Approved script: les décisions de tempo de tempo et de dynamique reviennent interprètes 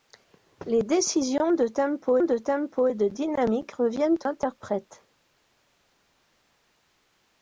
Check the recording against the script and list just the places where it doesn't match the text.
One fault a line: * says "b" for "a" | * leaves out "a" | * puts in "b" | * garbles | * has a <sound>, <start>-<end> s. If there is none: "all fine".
all fine